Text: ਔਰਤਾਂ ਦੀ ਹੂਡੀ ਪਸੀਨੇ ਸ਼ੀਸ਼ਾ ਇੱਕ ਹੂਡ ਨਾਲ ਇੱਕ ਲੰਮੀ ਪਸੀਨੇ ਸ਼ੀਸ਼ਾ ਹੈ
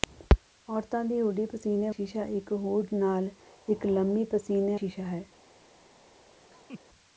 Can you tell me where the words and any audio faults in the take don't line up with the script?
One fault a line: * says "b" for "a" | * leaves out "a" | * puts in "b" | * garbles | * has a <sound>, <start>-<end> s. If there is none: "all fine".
* has a laugh, 6.5-6.8 s